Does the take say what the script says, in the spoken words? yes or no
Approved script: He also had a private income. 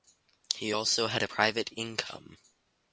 yes